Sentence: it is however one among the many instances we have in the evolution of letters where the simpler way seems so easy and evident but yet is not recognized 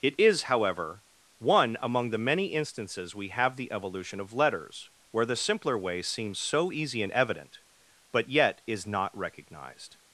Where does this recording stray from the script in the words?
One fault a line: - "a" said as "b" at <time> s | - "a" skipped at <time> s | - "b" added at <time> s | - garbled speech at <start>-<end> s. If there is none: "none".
- "in" skipped at 3.6 s